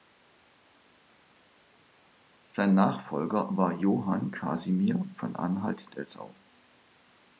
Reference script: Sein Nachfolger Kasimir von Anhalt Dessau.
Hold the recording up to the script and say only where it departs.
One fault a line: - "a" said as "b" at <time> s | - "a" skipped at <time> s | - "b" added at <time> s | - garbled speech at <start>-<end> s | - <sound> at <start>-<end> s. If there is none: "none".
- "war Johann" added at 3.5 s